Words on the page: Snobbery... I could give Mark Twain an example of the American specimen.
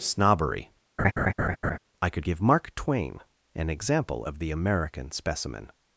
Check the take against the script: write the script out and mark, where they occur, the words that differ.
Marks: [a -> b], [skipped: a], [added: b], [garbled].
Snobbery... I could give Mark Twain an example of the American specimen.